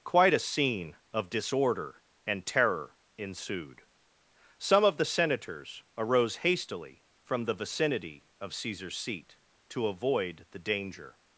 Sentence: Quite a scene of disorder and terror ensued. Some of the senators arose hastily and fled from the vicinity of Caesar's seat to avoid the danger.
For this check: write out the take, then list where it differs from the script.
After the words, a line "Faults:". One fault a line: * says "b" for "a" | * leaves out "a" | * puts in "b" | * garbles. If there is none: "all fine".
Quite a scene of disorder and terror ensued. Some of the senators arose hastily from the vicinity of Caesar's seat to avoid the danger.
Faults:
* leaves out "and fled"